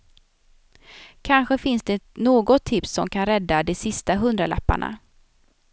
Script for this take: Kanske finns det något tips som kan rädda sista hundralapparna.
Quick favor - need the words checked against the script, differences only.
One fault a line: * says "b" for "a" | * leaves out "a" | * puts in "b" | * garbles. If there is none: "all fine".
* puts in "de"